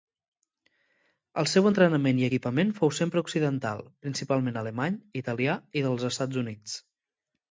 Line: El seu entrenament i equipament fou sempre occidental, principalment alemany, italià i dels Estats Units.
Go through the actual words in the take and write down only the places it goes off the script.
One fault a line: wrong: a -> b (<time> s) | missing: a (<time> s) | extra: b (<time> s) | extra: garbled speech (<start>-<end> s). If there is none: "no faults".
no faults